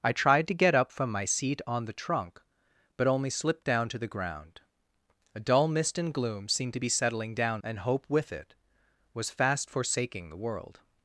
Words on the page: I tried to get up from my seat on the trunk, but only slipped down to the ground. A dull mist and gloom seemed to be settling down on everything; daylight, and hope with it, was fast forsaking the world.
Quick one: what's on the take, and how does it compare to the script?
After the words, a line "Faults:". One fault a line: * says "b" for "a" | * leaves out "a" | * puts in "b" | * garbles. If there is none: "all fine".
I tried to get up from my seat on the trunk, but only slipped down to the ground. A dull mist and gloom seemed to be settling down and hope with it, was fast forsaking the world.
Faults:
* leaves out "on everything daylight"